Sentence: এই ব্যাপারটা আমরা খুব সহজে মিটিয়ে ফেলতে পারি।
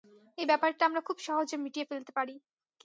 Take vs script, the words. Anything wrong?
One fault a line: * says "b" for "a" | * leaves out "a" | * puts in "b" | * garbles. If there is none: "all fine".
all fine